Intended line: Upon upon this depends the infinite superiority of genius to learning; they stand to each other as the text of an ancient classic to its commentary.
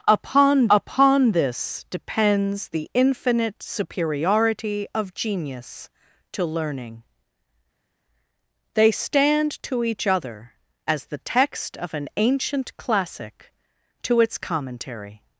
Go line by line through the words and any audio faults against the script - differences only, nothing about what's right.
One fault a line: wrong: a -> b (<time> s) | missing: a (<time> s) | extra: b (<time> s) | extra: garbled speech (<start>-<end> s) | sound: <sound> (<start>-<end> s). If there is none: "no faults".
no faults